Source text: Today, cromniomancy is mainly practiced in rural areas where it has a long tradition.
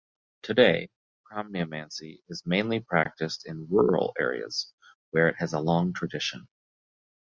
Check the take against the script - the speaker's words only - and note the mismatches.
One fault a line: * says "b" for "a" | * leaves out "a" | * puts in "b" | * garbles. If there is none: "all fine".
all fine